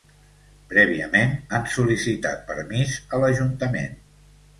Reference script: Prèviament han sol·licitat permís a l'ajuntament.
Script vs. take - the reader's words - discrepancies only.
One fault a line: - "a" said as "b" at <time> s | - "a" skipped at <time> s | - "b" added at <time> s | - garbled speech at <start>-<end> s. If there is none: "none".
none